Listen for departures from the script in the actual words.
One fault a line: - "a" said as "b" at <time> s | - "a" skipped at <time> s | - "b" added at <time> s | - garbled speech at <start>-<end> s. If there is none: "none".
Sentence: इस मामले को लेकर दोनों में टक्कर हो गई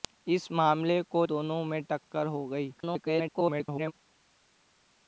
- "लेकर" skipped at 1.2 s
- garbled speech at 2.8-3.9 s